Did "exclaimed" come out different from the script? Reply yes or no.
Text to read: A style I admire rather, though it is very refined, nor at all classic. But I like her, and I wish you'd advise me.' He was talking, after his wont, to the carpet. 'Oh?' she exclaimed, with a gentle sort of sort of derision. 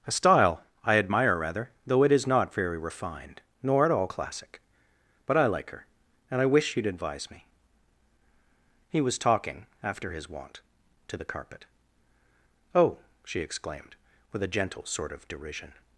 no